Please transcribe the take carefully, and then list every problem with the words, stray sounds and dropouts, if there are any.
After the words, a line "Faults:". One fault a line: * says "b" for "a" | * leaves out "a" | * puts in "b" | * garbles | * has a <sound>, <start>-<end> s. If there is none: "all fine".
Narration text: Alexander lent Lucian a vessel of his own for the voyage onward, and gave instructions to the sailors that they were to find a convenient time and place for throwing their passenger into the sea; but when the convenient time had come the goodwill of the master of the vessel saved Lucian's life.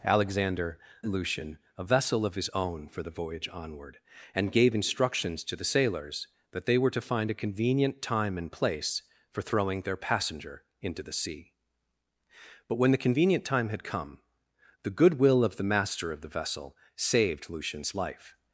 Alexander Lucian a vessel of his own for the voyage onward, and gave instructions to the sailors that they were to find a convenient time and place for throwing their passenger into the sea; but when the convenient time had come the goodwill of the master of the vessel saved Lucian's life.
Faults:
* leaves out "lent"